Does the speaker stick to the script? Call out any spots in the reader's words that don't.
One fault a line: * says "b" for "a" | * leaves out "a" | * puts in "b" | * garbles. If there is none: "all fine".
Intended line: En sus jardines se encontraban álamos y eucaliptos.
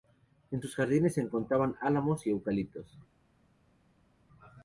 all fine